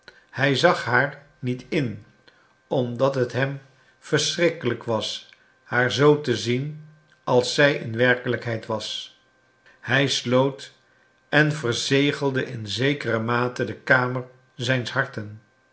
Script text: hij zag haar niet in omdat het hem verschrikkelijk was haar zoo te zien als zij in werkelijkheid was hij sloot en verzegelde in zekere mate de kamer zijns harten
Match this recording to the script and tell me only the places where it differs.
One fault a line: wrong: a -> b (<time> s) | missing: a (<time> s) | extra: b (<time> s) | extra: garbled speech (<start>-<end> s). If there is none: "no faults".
no faults